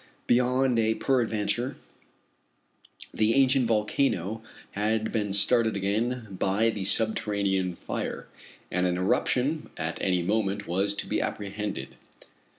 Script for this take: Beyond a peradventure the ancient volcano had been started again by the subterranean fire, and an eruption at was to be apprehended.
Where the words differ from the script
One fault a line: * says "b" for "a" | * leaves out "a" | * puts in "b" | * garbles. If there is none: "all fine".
* puts in "any moment"